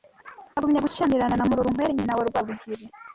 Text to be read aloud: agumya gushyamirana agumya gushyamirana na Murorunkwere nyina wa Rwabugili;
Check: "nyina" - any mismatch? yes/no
no